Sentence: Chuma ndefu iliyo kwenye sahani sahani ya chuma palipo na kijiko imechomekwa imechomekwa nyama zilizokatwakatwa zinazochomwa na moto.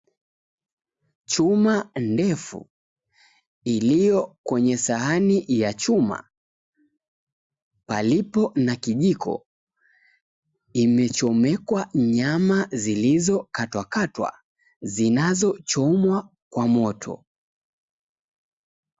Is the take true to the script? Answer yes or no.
no